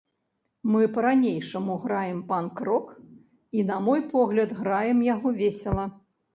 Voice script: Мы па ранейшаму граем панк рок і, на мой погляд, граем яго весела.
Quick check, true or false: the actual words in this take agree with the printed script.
true